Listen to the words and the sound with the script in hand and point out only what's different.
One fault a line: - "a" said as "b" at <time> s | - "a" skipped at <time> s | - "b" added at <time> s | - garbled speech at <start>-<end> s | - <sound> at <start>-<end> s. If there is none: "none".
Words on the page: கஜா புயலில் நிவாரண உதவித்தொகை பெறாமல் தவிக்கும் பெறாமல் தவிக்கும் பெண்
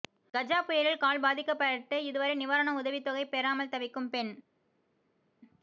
- "கால் பாதிக்கப்பட்டு இதுவரை" added at 1.0 s
- "பெறாமல் தவிக்கும்" skipped at 4.1 s